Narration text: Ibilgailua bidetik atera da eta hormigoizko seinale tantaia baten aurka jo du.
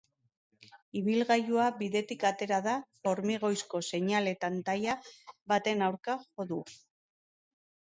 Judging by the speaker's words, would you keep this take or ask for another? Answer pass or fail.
fail